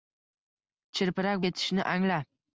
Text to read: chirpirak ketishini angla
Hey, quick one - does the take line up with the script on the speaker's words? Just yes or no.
yes